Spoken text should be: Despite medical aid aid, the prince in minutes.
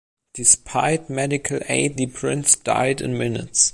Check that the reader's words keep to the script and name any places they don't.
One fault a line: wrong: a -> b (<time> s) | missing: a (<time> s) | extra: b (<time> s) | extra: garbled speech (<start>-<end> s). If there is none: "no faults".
missing: aid (2.0 s)
extra: died (2.5 s)